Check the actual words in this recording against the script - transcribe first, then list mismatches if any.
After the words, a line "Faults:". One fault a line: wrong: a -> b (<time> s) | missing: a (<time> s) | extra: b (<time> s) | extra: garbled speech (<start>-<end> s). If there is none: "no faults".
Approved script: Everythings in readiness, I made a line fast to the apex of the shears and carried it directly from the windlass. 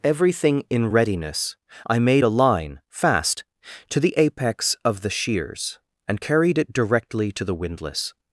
Everything in readiness, I made a line fast to the apex of the shears and carried it directly to the windlass.
Faults:
wrong: Everythings -> Everything (0.0 s)
wrong: from -> to (7.3 s)